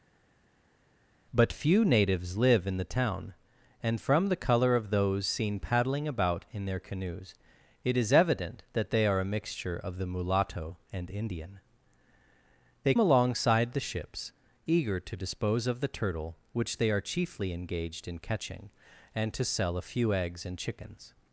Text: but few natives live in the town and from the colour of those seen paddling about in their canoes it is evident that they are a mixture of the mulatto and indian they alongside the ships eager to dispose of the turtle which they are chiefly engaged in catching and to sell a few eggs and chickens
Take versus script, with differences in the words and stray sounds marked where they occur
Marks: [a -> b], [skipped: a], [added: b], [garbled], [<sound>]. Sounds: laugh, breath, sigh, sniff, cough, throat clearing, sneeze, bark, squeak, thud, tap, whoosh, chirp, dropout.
but few natives live in the town and from the colour of those seen paddling about in their canoes it is evident that they are a mixture of the mulatto and indian they alongside the ships eager to dispose of the turtle which they are chiefly engaged in catching and to sell a few eggs and chickens